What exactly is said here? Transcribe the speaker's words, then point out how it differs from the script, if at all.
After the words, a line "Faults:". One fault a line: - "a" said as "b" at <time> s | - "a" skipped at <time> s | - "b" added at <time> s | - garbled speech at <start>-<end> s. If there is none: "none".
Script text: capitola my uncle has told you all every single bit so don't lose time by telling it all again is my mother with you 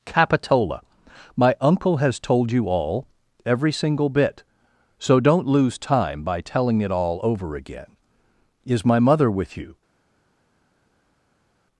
capitola my uncle has told you all every single bit so don't lose time by telling it all over again is my mother with you
Faults:
- "over" added at 7.2 s